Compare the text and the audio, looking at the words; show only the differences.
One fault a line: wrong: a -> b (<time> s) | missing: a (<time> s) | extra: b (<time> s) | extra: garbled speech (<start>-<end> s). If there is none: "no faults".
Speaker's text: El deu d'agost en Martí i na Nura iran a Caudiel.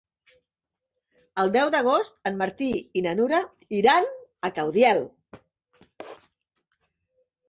no faults